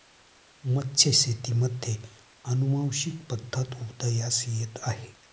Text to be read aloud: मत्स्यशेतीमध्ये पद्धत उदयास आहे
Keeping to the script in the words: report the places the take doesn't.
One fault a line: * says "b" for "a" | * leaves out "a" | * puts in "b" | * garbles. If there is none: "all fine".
* puts in "अनुवांशिक"
* puts in "येत"